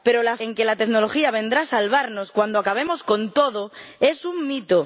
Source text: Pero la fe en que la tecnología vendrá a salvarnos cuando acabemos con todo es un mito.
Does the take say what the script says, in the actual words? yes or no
no